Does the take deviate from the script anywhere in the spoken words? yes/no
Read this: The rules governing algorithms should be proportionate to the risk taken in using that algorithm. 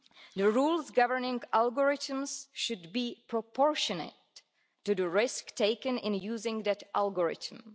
no